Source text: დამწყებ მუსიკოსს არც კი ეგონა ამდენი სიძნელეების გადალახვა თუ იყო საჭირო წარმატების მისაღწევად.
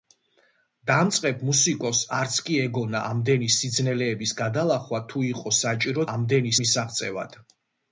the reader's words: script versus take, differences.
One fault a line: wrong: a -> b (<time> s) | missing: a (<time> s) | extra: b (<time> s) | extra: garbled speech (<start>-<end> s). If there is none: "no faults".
wrong: წარმატების -> ამდენი (6.1 s)